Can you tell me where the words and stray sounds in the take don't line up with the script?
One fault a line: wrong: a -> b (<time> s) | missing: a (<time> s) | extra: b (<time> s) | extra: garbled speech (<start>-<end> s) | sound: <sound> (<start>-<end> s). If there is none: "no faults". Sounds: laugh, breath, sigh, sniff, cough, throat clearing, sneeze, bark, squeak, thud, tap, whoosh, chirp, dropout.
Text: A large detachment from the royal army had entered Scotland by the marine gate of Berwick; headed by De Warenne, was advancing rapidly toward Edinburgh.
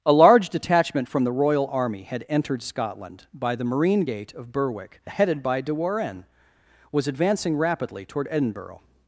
no faults